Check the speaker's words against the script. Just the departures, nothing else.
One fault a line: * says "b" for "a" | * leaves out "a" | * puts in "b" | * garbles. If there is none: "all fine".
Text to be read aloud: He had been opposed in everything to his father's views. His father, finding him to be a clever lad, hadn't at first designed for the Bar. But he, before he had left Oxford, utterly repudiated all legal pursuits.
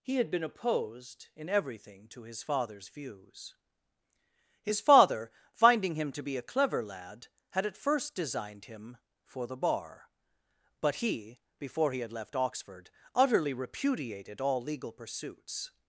* says "had" for "hadn't"
* puts in "him"